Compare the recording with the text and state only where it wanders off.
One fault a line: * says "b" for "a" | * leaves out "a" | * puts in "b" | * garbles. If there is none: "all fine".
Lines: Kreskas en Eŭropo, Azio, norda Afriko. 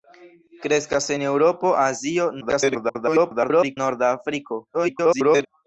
* garbles
* garbles